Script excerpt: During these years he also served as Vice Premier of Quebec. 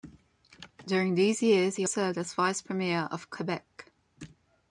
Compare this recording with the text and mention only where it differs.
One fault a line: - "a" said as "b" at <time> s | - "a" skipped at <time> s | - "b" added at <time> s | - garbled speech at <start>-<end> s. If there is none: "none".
- "also" skipped at 1.8 s